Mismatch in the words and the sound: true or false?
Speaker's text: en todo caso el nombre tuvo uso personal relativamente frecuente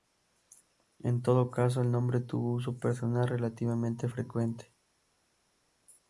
false